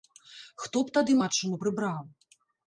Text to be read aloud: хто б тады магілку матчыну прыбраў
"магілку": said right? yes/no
no